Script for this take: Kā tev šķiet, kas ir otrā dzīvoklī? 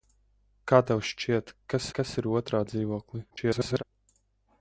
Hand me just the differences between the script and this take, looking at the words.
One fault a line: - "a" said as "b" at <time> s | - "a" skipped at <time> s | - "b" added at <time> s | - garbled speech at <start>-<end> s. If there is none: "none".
- "kas" added at 2.0 s
- garbled speech at 3.3-3.8 s